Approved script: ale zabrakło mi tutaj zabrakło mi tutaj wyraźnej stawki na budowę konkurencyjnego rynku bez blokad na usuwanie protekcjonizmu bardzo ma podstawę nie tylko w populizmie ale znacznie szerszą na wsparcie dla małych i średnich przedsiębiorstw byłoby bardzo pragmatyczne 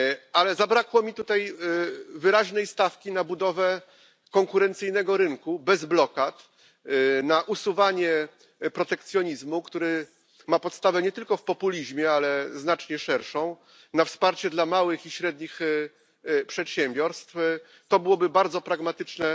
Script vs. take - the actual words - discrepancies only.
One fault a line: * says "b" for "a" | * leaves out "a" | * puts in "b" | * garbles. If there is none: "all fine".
* leaves out "zabrakło mi tutaj"
* says "który" for "bardzo"
* puts in "to"